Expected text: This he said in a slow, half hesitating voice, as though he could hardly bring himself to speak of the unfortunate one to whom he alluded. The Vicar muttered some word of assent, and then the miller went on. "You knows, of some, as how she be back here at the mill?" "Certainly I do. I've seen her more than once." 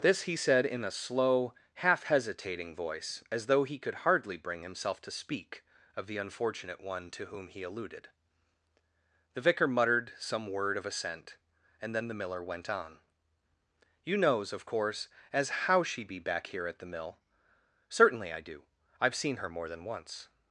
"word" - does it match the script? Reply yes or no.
yes